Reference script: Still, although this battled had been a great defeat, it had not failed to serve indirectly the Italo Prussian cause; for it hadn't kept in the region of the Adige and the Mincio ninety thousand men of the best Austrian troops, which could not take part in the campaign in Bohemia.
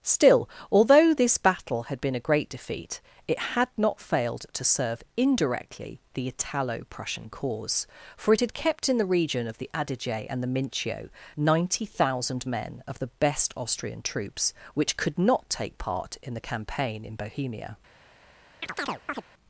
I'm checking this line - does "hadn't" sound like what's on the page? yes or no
no